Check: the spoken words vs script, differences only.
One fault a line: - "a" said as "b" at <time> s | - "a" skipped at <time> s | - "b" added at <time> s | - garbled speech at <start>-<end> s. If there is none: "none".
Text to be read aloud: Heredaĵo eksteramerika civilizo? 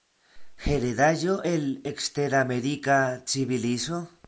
- "el" added at 1.5 s